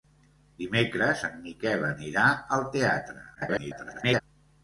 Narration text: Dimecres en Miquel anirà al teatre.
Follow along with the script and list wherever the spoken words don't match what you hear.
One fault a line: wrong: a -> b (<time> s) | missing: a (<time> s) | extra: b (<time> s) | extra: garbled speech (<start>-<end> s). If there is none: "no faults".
extra: garbled speech (3.4-4.2 s)